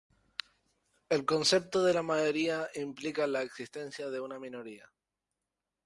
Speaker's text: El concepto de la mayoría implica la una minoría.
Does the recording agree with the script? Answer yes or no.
no